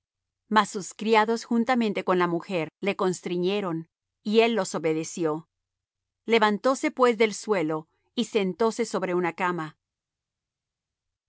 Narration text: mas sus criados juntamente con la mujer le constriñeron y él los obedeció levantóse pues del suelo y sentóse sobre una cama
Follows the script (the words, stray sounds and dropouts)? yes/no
yes